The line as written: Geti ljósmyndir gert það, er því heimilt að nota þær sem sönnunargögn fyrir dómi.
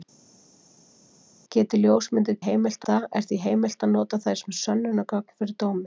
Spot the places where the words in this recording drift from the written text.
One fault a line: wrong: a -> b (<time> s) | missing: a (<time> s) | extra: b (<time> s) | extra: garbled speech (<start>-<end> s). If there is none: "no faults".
wrong: gert -> heimilt (2.5 s)